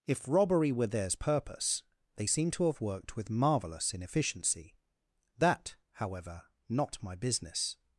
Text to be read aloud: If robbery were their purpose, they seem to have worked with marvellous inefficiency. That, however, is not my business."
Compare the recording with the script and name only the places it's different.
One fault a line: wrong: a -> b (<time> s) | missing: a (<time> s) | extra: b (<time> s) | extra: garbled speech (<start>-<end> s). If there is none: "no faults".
wrong: their -> theirs (0.9 s)
missing: is (6.5 s)